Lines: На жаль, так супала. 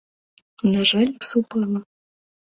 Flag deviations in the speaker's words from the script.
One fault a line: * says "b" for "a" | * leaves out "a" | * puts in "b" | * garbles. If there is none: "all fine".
* leaves out "так"